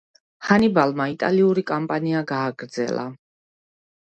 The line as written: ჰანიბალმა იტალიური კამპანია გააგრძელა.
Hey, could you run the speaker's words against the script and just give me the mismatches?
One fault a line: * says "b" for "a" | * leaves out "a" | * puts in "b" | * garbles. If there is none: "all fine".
all fine